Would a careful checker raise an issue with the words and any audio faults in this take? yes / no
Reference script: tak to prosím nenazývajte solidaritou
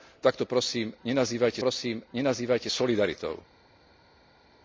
yes